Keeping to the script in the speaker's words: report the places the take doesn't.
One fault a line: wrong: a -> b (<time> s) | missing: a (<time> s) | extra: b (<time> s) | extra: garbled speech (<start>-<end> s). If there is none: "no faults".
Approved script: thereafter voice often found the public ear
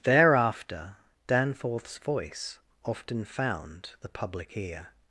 extra: danforth's (1.3 s)